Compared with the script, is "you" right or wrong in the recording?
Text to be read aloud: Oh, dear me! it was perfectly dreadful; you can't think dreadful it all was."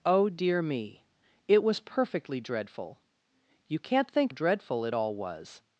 right